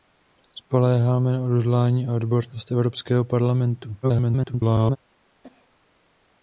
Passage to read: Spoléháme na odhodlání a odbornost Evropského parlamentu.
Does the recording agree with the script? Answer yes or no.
no